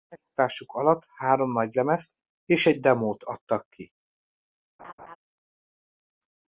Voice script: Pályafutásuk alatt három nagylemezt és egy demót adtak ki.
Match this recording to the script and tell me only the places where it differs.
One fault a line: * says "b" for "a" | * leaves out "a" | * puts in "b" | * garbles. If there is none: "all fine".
all fine